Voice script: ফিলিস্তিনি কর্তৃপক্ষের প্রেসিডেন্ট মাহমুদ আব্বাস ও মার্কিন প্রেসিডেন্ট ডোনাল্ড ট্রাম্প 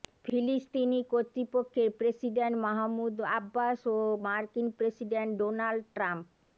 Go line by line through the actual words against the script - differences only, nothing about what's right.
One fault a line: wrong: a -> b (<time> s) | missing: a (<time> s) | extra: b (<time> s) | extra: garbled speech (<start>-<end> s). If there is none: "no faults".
no faults